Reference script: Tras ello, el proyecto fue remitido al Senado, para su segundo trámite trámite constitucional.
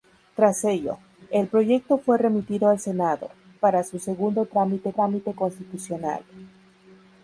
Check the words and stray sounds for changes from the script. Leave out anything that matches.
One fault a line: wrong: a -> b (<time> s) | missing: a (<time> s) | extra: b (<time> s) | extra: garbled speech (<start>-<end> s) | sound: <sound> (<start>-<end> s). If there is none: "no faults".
no faults